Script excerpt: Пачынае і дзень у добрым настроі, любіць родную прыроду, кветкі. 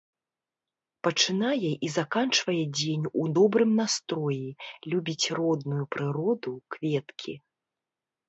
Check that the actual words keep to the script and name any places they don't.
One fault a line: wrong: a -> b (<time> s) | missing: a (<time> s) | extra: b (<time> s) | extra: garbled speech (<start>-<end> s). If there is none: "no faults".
extra: заканчвае (2.0 s)